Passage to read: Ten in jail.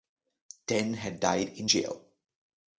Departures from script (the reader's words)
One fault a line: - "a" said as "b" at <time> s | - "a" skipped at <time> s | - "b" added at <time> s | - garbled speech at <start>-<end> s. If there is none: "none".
- "had died" added at 0.9 s